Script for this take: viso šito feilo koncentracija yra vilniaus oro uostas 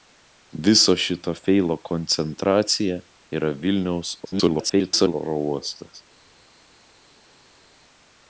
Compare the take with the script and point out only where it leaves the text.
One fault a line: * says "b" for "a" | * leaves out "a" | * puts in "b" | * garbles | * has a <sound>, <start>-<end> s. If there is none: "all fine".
* garbles